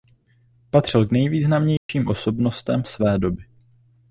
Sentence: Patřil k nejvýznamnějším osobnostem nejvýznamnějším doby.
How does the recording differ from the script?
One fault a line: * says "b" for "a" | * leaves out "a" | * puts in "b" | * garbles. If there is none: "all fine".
* says "své" for "nejvýznamnějším"